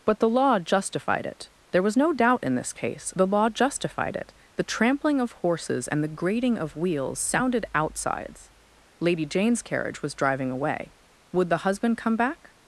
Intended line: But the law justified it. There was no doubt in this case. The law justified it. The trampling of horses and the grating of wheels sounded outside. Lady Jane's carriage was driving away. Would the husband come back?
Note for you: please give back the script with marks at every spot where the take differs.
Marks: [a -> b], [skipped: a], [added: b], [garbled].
But the law justified it. There was no doubt in this case. The law justified it. The trampling of horses and the grating of wheels sounded [outside. -> outsides] Lady Jane's carriage was driving away. Would the husband come back?